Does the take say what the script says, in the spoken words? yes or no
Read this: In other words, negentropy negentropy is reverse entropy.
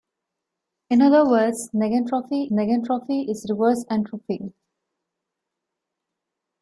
yes